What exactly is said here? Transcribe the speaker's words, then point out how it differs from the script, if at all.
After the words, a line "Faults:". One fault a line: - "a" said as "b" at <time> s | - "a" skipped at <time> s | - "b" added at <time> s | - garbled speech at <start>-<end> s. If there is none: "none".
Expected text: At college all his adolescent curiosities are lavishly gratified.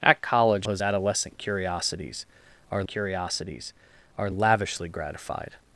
At college his adolescent curiosities are curiosities are lavishly gratified.
Faults:
- "all" skipped at 0.7 s
- "curiosities are" added at 2.9 s